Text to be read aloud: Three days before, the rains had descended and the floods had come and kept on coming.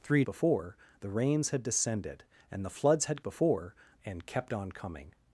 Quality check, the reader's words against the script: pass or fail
fail